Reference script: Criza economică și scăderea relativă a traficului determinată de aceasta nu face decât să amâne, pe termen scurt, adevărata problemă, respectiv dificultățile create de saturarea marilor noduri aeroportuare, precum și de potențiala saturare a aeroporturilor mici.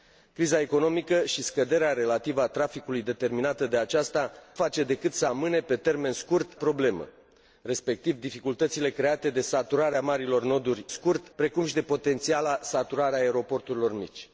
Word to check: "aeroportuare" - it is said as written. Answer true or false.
false